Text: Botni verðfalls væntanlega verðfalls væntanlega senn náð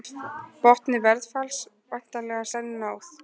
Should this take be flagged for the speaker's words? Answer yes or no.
yes